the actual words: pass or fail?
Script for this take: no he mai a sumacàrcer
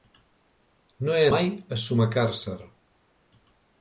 pass